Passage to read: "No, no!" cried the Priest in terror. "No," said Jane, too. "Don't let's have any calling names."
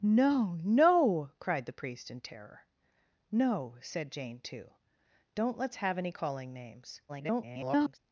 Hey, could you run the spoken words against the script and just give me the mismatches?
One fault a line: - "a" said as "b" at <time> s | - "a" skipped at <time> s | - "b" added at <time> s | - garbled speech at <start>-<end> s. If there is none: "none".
- garbled speech at 7.1-8.0 s